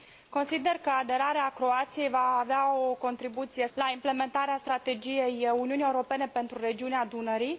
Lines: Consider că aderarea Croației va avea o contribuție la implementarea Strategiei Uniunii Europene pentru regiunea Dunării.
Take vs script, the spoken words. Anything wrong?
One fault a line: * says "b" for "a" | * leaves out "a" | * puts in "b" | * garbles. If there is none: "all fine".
all fine